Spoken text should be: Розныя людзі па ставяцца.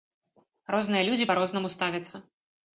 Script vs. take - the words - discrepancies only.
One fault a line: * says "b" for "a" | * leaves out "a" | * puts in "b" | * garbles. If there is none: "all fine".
* puts in "рознаму"